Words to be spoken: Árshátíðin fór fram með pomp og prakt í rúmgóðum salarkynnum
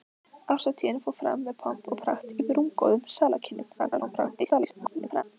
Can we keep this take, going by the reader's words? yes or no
no